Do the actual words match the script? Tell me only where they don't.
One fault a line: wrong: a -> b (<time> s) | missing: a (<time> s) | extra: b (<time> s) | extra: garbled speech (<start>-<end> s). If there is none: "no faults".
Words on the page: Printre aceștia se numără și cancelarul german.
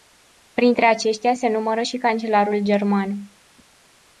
no faults